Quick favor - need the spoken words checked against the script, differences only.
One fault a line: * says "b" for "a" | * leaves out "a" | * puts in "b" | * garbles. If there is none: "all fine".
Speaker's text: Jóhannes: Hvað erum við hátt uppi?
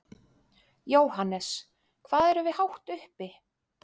all fine